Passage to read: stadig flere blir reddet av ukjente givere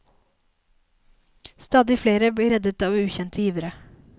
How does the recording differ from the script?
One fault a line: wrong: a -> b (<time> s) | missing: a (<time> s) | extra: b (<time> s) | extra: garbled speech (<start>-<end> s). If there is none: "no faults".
no faults